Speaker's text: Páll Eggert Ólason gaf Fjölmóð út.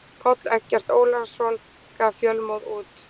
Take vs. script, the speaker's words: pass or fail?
pass